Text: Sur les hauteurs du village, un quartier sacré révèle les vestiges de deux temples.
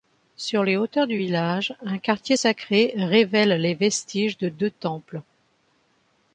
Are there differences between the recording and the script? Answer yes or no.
no